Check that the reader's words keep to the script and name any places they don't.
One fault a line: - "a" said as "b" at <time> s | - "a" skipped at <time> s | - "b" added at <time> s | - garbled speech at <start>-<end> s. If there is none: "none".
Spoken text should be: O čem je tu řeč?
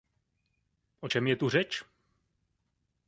none